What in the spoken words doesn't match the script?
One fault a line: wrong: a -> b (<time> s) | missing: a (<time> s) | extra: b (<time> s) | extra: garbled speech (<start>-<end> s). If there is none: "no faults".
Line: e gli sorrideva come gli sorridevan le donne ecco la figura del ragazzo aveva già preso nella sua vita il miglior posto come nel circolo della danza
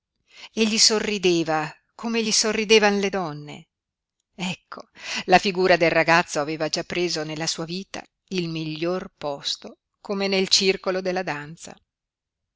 no faults